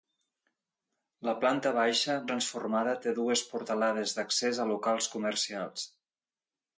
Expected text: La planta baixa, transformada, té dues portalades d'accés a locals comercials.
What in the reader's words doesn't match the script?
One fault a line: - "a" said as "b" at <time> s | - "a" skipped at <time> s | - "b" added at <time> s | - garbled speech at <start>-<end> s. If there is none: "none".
none